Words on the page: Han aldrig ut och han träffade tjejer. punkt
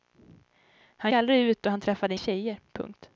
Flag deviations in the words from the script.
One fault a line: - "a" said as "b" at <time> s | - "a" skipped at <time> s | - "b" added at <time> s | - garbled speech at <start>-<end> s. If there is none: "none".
none